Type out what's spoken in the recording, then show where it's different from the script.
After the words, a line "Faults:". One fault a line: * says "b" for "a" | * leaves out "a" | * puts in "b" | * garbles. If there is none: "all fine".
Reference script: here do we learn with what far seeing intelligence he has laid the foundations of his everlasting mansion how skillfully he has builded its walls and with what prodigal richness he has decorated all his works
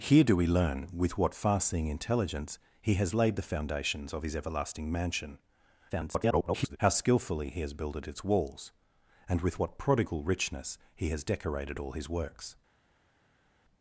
here do we learn with what far seeing intelligence he has laid the foundations of his everlasting mansion [garbled] how skillfully he has builded its walls and with what prodigal richness he has decorated all his works
Faults:
* garbles